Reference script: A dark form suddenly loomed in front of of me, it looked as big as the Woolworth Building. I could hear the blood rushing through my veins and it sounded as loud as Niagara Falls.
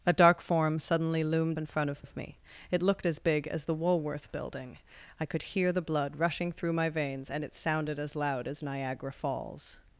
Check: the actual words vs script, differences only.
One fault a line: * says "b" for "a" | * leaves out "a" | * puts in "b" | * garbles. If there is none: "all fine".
all fine